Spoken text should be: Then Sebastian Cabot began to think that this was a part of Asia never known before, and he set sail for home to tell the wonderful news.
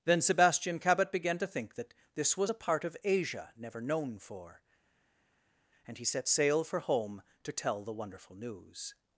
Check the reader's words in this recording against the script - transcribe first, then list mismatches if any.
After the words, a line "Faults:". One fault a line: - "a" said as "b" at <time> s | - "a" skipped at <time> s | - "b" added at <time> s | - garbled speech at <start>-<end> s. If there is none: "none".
Then Sebastian Cabot began to think that this was a part of Asia never known for, and he set sail for home to tell the wonderful news.
Faults:
- "before" said as "for" at 4.2 s